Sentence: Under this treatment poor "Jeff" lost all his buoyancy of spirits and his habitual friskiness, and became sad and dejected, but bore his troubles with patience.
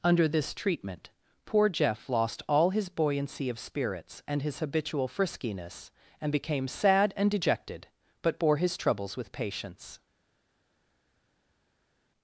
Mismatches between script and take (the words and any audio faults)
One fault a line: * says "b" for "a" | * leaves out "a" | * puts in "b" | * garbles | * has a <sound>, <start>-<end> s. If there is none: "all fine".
all fine